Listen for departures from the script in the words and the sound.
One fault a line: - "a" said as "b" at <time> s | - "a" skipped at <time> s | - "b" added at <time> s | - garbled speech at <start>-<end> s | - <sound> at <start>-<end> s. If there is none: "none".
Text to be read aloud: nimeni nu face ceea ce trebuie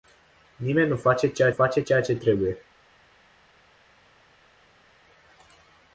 - "face ceea" added at 1.5 s